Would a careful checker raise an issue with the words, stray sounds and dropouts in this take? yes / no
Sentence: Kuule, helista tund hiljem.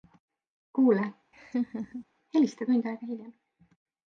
yes